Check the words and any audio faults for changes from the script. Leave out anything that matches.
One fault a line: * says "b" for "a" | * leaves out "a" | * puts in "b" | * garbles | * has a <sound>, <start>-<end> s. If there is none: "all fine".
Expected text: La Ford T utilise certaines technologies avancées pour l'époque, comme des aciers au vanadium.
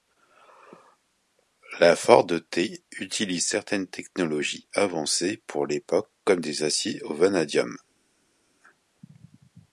all fine